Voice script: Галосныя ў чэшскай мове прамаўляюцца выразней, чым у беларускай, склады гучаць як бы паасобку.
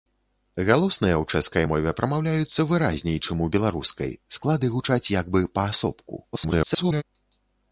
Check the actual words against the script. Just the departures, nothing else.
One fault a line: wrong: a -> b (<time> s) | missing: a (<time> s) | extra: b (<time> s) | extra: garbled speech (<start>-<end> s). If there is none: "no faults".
extra: garbled speech (6.3-7.0 s)